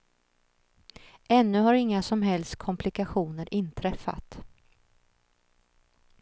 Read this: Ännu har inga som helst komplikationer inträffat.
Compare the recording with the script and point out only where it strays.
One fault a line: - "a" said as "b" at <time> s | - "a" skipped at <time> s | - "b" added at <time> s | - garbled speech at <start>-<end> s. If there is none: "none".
none